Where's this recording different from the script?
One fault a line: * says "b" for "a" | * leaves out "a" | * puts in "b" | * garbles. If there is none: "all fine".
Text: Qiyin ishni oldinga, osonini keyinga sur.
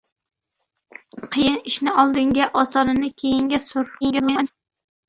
* garbles